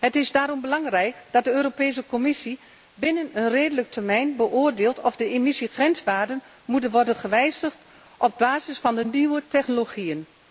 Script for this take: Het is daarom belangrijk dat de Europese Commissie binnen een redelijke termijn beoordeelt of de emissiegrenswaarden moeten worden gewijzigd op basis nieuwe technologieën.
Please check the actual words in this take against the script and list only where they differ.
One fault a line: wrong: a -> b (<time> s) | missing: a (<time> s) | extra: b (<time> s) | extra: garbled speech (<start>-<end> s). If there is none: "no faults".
extra: van de (8.8 s)